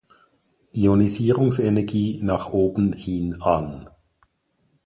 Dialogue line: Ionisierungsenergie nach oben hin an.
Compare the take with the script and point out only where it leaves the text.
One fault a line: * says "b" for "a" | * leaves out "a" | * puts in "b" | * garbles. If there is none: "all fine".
all fine